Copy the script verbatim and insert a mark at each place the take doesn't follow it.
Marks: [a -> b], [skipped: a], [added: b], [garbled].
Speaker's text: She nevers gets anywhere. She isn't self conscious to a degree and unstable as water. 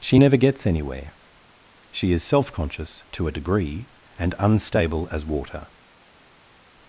She [nevers -> never] gets anywhere. She [isn't -> is] self conscious to a degree and unstable as water.